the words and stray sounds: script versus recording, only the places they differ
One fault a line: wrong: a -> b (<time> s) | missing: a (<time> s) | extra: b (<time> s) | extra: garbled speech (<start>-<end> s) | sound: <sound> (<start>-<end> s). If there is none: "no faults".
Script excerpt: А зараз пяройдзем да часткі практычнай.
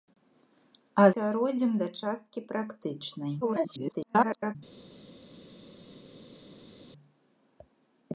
missing: зараз (1.1 s)
extra: garbled speech (3.4-4.6 s)